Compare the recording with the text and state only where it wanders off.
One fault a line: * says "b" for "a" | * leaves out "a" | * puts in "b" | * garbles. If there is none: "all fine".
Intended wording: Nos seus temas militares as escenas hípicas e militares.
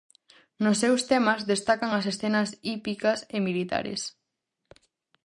* says "destacan" for "militares"